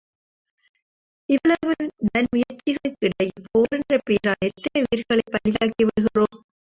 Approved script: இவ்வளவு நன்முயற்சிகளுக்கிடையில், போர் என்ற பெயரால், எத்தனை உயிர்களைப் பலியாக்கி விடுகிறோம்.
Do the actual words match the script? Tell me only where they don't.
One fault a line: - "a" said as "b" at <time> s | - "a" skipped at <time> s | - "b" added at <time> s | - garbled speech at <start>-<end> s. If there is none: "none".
none